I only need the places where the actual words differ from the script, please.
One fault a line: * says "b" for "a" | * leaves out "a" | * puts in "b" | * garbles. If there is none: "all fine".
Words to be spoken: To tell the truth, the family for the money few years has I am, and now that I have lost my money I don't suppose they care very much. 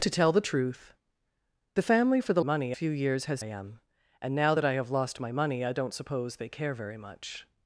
all fine